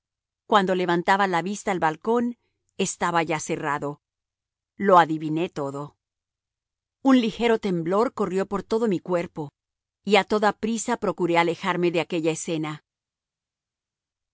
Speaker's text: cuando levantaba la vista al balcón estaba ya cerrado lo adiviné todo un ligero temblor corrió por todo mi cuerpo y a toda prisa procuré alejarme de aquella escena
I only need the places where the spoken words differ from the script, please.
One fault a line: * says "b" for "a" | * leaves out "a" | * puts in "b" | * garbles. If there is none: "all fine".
all fine